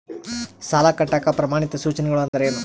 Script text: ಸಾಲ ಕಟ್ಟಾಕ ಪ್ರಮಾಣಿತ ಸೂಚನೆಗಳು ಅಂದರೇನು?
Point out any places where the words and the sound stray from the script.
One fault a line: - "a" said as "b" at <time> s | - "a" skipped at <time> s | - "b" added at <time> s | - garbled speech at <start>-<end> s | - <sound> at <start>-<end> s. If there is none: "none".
- dropout at 2.3-2.3 s